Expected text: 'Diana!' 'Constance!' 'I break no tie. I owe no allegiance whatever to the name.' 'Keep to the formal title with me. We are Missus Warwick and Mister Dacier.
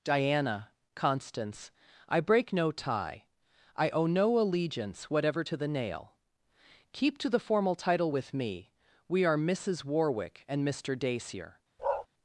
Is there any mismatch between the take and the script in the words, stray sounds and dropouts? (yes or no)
yes